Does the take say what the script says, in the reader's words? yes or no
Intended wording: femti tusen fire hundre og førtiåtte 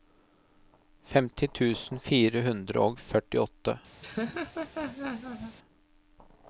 yes